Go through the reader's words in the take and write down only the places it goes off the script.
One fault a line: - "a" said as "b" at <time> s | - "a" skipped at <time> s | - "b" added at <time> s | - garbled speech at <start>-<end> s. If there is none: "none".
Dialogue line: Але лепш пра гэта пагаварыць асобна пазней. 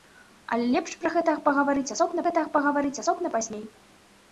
- "гэта пагаварыць асобна" added at 2.3 s